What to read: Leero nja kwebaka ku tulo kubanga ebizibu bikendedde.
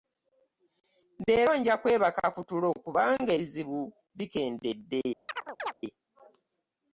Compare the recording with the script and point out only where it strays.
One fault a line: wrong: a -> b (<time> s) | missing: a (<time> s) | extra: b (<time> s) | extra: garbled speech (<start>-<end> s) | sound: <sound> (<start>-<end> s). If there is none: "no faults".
sound: chirp (5.3-5.7 s)